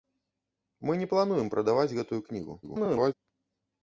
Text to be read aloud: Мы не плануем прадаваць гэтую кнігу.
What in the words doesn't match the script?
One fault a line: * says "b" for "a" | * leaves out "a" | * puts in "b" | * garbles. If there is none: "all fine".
* garbles